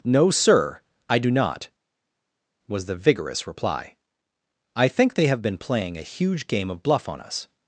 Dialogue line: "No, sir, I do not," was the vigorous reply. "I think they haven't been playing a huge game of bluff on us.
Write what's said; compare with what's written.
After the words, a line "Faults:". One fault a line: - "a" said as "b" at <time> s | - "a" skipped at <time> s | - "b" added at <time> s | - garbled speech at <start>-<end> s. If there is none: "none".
"No, sir, I do not," was the vigorous reply. "I think they have been playing a huge game of bluff on us.
Faults:
- "haven't" said as "have" at 5.3 s